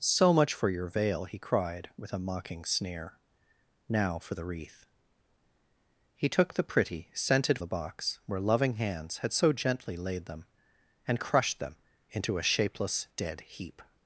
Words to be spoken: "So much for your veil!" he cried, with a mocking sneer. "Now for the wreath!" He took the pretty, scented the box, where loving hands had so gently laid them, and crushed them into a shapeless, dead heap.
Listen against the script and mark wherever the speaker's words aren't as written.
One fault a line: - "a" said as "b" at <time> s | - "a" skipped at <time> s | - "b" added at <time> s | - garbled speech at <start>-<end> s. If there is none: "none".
none